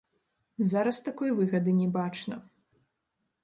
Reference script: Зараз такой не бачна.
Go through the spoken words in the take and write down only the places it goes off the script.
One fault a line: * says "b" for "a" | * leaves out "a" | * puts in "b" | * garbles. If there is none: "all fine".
* puts in "выгады"